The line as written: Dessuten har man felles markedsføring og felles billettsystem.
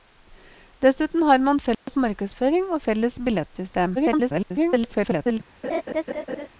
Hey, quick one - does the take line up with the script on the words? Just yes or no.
no